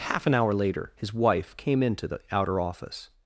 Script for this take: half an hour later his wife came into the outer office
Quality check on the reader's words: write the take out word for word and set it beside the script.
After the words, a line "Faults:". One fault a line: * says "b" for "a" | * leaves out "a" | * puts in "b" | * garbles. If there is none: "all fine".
half an hour later his wife came into the outer office
Faults:
all fine